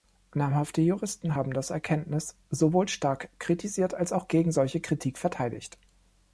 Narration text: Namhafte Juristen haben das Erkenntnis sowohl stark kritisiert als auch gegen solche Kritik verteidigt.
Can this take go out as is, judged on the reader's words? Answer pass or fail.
pass